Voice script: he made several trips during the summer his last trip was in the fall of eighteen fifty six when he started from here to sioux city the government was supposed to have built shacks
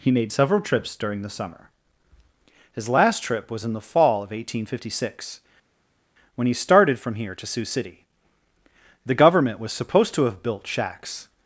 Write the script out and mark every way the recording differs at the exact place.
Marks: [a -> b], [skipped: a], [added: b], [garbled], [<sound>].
he made several trips during the summer his last trip was in the fall of eighteen fifty six when he started from here to sioux city the government was supposed to have built shacks